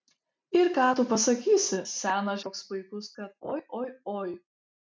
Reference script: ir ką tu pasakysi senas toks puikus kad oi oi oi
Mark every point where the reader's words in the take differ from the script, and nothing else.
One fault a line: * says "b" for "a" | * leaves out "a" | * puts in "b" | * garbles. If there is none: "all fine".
all fine